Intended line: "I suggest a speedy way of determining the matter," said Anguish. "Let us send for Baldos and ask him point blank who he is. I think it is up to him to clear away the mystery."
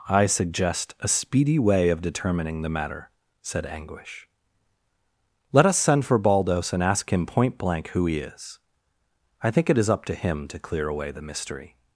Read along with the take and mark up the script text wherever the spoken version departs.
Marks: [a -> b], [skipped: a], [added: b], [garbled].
"I suggest a speedy way of determining the matter," said Anguish. "Let us send for Baldos and ask him point blank who he is. I think it is up to him to clear away the mystery."